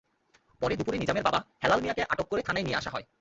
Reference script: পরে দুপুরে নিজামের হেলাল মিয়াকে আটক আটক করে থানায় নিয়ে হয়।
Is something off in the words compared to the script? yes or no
yes